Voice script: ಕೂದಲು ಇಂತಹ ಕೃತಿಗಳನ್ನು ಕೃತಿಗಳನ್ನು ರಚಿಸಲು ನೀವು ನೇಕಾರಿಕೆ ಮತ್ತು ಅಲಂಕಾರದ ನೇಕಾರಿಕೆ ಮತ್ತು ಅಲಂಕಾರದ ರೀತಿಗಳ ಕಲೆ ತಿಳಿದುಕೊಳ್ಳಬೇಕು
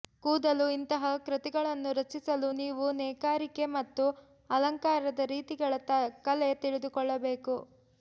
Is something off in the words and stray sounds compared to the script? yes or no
yes